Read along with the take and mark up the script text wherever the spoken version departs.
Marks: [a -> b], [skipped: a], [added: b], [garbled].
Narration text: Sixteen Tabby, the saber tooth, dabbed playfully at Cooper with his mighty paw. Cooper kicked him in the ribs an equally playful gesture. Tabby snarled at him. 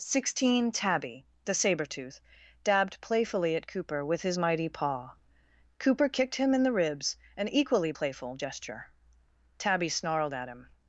Sixteen Tabby, the saber tooth, dabbed playfully at Cooper with his mighty paw. Cooper kicked him in the ribs an equally playful gesture. Tabby snarled at him.